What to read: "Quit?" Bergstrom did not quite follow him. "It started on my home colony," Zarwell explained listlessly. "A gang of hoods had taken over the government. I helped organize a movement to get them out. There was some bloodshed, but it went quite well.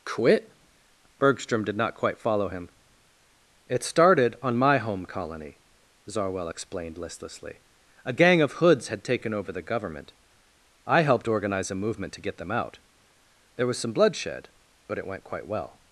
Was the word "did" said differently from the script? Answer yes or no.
no